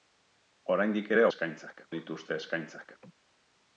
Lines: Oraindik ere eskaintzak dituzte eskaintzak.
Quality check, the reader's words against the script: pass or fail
pass